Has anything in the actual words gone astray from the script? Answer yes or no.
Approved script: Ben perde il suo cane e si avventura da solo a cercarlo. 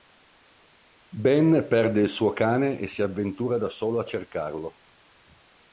no